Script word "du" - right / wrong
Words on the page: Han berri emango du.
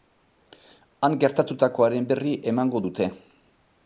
wrong